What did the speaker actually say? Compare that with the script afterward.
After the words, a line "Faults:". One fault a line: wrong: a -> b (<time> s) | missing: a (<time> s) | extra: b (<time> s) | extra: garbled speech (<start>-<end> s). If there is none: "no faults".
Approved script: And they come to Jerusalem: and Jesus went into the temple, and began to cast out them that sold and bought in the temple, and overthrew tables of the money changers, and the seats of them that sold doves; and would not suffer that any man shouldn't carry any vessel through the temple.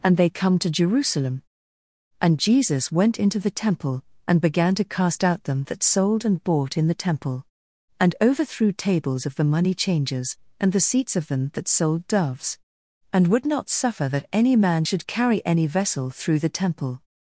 And they come to Jerusalem: and Jesus went into the temple, and began to cast out them that sold and bought in the temple, and overthrew tables of the money changers, and the seats of them that sold doves; and would not suffer that any man should carry any vessel through the temple.
Faults:
wrong: shouldn't -> should (14.8 s)